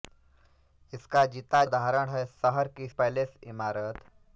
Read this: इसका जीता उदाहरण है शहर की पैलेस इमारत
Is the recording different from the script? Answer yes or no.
no